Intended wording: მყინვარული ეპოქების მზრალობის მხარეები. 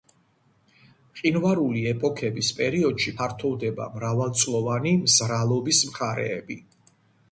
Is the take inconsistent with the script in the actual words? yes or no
yes